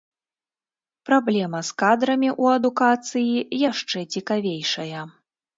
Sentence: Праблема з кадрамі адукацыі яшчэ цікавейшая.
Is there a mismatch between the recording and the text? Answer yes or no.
yes